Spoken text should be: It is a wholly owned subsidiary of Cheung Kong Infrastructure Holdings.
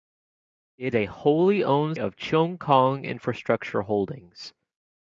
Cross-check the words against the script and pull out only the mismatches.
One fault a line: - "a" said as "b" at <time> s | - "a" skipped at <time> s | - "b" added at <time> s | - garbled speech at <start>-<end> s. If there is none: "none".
- "is" skipped at 0.9 s
- "subsidiary" skipped at 2.0 s